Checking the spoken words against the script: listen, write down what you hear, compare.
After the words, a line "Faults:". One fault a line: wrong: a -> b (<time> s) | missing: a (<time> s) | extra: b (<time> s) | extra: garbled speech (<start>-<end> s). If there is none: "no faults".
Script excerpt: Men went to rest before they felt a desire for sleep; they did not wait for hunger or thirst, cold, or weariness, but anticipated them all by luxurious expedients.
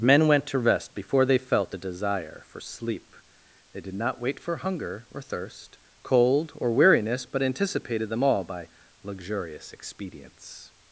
Men went to rest before they felt a desire for sleep; they did not wait for hunger or thirst, cold, or weariness, but anticipated them all by luxurious expedients.
Faults:
no faults